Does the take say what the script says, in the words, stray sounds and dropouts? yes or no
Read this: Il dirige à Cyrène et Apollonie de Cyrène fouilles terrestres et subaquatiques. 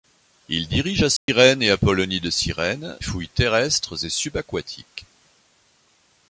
no